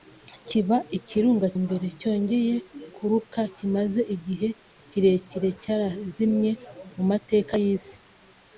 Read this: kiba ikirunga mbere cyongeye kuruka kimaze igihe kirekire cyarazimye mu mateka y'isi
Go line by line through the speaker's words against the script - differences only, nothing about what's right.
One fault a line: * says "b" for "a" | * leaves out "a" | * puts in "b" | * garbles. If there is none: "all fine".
all fine